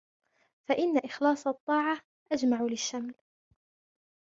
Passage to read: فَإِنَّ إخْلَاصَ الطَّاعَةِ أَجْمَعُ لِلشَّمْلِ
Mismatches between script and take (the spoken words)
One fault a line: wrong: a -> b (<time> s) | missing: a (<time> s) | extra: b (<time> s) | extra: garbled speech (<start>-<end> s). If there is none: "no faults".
no faults